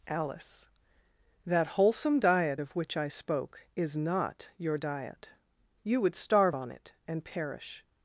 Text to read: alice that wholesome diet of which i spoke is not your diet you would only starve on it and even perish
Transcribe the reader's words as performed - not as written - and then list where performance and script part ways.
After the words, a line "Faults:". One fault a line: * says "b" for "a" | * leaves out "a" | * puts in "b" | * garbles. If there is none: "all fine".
alice that wholesome diet of which i spoke is not your diet you would starve on it and perish
Faults:
* leaves out "only"
* leaves out "even"